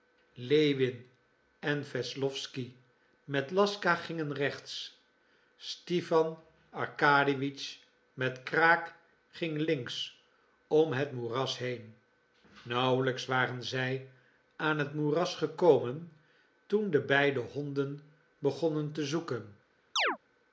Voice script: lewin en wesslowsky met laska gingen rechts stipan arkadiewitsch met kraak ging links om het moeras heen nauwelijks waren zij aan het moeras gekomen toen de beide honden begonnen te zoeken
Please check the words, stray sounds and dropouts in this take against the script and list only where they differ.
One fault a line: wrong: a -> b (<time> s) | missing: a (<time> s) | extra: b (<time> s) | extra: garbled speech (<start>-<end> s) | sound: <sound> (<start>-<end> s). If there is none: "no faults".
sound: chirp (20.0-20.2 s)